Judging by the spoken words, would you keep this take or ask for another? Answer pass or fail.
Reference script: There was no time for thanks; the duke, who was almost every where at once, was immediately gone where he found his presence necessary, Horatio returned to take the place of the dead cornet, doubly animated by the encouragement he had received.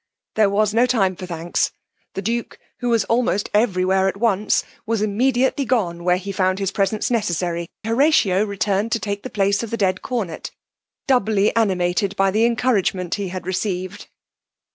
pass